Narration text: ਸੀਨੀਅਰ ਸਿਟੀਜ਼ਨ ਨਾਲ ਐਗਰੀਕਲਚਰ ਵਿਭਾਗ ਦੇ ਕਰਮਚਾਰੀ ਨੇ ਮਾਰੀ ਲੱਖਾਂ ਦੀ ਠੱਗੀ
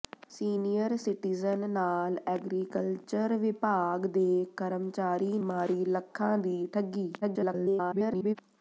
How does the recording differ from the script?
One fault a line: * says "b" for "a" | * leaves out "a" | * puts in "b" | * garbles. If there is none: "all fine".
* leaves out "ਨੇ"
* garbles